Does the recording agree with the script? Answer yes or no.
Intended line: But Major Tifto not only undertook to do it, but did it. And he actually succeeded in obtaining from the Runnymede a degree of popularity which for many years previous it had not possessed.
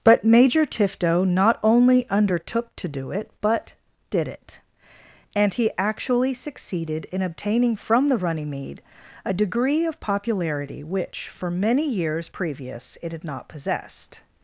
yes